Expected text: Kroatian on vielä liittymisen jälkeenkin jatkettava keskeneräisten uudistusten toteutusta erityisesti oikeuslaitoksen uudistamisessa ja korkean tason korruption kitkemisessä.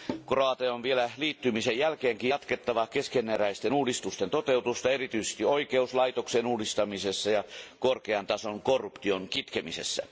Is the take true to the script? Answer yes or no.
yes